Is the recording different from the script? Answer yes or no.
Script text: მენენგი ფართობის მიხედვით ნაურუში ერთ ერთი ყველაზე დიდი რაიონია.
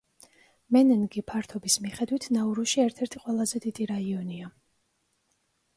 no